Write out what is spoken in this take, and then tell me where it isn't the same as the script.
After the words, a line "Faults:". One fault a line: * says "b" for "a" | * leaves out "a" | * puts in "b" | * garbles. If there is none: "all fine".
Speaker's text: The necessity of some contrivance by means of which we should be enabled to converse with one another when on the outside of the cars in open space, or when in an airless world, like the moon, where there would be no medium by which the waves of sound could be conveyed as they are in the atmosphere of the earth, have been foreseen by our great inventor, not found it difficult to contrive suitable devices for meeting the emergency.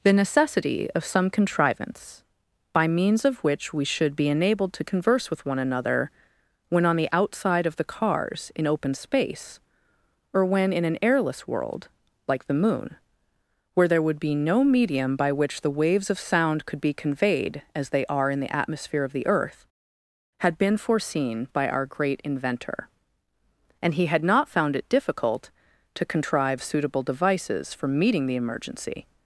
The necessity of some contrivance by means of which we should be enabled to converse with one another when on the outside of the cars in open space, or when in an airless world, like the moon, where there would be no medium by which the waves of sound could be conveyed as they are in the atmosphere of the earth, had been foreseen by our great inventor, and he had not found it difficult to contrive suitable devices for meeting the emergency.
Faults:
* says "had" for "have"
* puts in "and he had"